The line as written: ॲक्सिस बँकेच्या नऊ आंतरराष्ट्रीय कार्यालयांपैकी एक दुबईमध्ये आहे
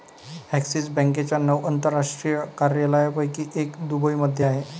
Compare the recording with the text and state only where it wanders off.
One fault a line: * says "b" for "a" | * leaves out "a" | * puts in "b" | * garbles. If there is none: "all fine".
all fine